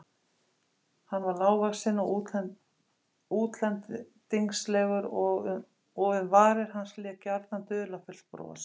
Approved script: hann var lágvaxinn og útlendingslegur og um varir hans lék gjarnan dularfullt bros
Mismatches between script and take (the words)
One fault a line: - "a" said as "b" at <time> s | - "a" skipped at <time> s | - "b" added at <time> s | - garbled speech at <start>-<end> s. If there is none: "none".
none